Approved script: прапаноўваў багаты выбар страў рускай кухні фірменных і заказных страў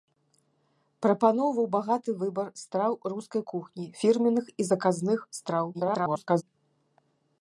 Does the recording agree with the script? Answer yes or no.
no